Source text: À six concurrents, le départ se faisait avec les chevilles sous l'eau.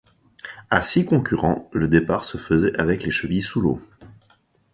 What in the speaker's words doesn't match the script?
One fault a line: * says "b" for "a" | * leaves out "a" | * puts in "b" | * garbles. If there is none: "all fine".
all fine